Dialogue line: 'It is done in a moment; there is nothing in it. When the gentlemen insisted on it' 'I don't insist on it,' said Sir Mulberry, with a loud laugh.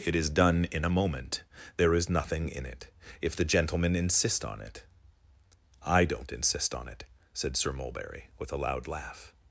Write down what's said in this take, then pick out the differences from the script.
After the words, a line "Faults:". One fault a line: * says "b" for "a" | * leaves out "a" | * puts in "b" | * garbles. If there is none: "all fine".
'It is done in a moment; there is nothing in it. If the gentlemen insist on it' 'I don't insist on it,' said Sir Mulberry, with a loud laugh.
Faults:
* says "If" for "When"
* says "insist" for "insisted"